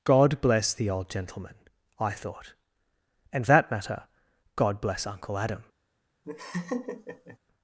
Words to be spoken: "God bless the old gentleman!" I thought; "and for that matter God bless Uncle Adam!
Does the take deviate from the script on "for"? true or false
true